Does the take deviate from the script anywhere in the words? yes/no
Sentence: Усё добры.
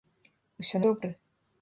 no